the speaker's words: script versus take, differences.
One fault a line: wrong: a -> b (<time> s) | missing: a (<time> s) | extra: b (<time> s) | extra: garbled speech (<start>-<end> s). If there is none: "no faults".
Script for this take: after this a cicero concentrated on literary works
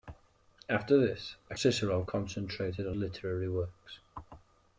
no faults